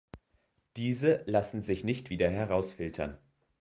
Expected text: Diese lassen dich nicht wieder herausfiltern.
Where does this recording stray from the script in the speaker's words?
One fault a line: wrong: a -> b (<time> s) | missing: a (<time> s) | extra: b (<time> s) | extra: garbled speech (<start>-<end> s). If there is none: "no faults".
wrong: dich -> sich (1.6 s)